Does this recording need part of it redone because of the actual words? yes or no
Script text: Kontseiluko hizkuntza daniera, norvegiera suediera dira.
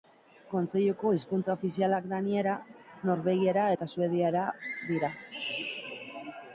yes